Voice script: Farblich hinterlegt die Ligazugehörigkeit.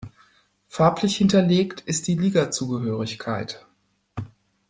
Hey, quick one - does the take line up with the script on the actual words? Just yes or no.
no